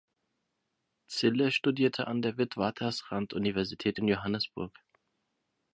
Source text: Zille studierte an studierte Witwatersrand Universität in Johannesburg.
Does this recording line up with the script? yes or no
no